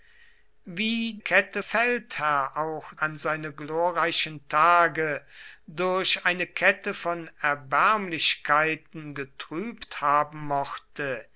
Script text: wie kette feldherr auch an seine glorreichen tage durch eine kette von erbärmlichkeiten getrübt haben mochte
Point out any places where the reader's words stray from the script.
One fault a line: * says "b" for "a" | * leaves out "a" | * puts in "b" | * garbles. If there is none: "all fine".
all fine